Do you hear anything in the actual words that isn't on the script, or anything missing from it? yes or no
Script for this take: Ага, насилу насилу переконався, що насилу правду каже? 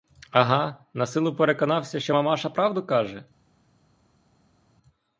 yes